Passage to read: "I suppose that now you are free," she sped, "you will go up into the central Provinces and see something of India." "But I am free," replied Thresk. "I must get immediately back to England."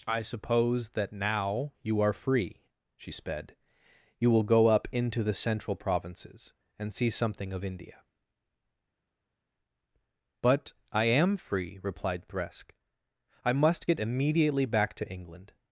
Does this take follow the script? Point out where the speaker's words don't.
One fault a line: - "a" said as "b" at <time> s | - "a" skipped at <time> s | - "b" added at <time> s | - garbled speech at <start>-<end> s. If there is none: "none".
none